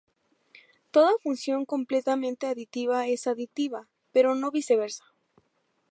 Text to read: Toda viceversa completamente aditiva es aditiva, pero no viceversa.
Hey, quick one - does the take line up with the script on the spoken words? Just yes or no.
no